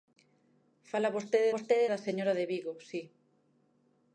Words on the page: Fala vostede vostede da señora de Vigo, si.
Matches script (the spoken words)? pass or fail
pass